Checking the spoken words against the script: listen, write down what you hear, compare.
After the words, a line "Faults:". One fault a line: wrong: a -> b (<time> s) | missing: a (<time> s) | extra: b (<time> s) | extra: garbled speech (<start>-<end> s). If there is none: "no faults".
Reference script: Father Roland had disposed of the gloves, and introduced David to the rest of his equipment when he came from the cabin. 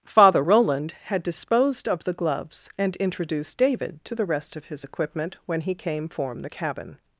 Father Roland had disposed of the gloves, and introduced David to the rest of his equipment when he came form the cabin.
Faults:
wrong: from -> form (6.1 s)